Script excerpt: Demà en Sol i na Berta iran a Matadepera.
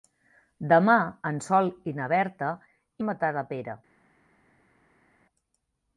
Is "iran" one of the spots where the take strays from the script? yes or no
yes